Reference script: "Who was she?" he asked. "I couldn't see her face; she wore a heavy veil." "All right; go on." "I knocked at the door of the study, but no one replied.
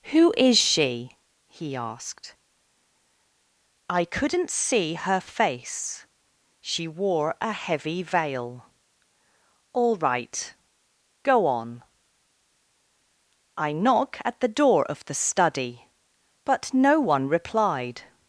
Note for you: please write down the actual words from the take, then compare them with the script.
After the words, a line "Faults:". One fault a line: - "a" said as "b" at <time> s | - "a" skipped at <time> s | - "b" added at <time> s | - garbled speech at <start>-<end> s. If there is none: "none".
"Who is she?" he asked. "I couldn't see her face; she wore a heavy veil." "All right; go on." "I knock at the door of the study, but no one replied.
Faults:
- "was" said as "is" at 0.3 s
- "knocked" said as "knock" at 13.7 s